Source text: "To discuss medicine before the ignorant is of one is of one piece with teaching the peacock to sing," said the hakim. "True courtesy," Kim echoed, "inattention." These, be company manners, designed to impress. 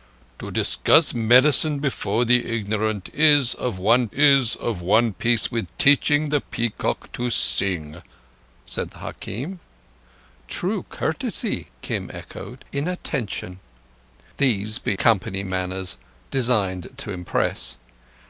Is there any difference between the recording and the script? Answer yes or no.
no